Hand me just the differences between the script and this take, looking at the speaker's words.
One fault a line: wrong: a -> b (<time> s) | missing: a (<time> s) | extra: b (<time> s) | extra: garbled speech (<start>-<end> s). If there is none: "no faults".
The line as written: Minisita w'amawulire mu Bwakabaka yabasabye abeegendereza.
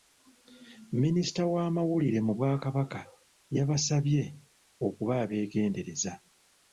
extra: okuba (4.9 s)